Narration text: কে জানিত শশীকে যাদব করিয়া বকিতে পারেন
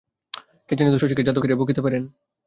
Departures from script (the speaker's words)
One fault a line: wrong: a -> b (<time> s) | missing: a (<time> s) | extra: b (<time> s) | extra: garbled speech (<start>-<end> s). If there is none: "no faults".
no faults